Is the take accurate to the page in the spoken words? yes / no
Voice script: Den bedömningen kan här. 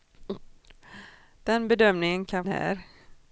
yes